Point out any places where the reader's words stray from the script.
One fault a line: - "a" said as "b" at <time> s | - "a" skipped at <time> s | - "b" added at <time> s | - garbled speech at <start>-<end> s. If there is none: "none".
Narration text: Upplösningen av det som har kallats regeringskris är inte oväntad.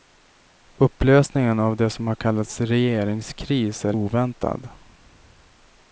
- "inte" skipped at 4.0 s